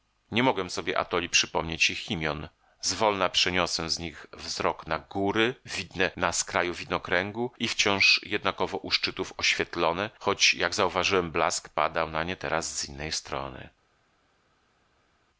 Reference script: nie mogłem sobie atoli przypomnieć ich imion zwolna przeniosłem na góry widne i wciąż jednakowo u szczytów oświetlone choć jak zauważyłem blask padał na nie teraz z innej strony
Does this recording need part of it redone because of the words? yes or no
yes